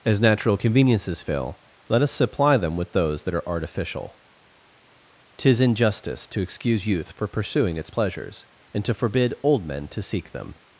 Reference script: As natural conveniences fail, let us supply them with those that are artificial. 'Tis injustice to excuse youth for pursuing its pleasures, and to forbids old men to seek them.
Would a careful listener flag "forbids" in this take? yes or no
yes